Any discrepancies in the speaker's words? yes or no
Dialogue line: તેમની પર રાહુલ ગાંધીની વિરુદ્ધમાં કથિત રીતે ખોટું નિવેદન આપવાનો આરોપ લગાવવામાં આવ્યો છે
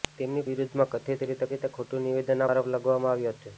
yes